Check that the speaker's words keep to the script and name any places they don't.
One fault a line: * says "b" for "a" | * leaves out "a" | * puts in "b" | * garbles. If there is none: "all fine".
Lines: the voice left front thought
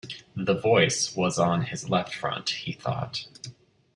* puts in "was on his"
* puts in "he"